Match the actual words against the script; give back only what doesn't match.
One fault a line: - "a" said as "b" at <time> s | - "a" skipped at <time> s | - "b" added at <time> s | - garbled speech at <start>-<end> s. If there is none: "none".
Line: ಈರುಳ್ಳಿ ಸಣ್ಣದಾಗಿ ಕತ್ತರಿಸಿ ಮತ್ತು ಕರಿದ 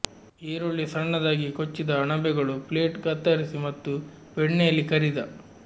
- "ಕೊಚ್ಚಿದ ಅಣಬೆಗಳು ಪ್ಲೇಟ್" added at 1.5 s
- "ಬೆಣ್ಣೆಯಲ್ಲಿ" added at 4.4 s